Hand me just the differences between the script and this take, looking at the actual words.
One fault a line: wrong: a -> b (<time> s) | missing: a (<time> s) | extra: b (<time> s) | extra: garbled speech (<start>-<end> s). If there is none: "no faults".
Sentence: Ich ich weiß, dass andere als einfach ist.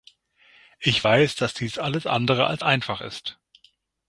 missing: ich (1.1 s)
extra: dies alles (1.5 s)